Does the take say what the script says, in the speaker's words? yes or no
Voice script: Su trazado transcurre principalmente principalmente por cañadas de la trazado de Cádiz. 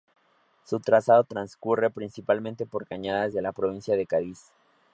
no